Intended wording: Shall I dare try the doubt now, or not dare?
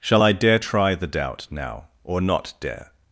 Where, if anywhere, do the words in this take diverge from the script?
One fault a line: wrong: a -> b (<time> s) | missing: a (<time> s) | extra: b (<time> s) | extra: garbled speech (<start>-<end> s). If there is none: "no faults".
no faults